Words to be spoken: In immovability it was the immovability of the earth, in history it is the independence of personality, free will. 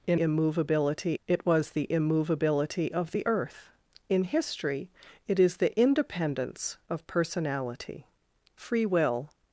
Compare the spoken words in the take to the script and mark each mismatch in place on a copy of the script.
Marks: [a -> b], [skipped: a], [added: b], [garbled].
In immovability it was the immovability of the earth, in history it is the independence of personality, free will.